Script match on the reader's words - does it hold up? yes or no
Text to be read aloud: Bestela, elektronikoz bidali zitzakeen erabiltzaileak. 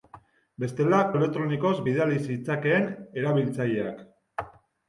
yes